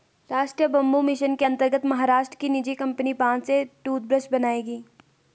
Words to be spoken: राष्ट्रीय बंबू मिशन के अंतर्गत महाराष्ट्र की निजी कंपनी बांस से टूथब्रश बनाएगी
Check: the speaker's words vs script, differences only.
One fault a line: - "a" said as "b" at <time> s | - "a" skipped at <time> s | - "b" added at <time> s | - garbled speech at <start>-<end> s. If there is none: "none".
none